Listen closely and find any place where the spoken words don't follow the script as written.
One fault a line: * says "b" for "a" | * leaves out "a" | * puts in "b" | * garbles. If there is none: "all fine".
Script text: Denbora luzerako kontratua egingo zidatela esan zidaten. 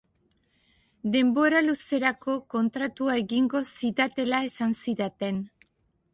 all fine